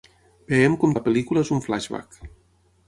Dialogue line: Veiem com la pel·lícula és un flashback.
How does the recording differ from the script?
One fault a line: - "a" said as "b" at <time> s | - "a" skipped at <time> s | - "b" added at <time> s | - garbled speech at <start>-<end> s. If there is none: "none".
none